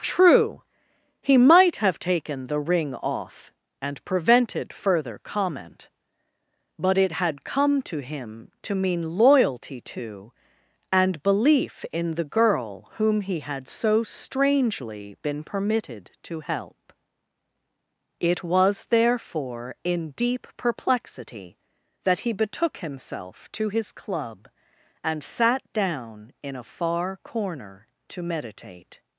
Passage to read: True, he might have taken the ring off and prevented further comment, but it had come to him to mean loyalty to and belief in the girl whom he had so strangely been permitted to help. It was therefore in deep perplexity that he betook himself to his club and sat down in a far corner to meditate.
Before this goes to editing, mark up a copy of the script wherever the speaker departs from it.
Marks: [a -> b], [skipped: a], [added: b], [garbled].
True, he might have taken the ring off and prevented further comment, but it had come to him to mean loyalty to and belief in the girl whom he had so strangely been permitted to help. It was therefore in deep perplexity that he betook himself to his club and sat down in a far corner to meditate.